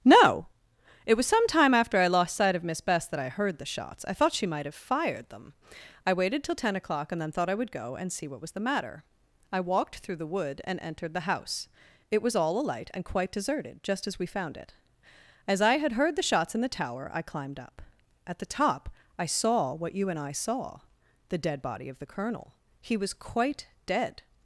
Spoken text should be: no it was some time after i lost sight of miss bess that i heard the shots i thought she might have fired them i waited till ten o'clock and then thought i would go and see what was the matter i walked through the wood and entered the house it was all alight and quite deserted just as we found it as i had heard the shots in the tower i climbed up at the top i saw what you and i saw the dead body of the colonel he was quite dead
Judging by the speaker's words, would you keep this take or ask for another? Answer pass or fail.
pass